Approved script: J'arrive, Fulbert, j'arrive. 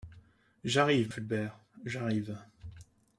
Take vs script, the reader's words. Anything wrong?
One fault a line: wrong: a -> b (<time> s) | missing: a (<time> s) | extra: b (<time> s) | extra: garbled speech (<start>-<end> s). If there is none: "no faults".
no faults